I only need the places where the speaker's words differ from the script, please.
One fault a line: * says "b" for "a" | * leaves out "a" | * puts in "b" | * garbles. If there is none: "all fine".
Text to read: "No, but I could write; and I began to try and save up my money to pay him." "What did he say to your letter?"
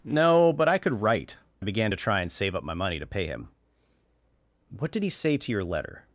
* leaves out "and"